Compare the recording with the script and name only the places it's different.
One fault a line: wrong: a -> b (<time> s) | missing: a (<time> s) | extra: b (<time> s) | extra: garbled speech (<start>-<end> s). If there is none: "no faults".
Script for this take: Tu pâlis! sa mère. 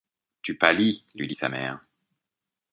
extra: lui dit (1.1 s)